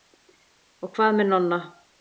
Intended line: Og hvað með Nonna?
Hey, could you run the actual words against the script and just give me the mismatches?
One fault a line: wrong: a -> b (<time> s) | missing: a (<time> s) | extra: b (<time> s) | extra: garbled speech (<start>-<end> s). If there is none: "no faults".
no faults